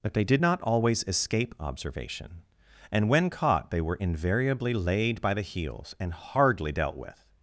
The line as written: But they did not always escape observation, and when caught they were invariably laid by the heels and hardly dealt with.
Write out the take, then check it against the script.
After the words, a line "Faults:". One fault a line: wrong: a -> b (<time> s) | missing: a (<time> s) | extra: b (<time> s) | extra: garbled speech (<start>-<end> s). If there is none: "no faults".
But they did not always escape observation, and when caught they were invariably laid by the heels and hardly dealt with.
Faults:
no faults